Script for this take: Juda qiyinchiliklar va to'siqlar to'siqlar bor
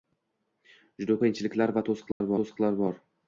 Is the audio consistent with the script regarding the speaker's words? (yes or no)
yes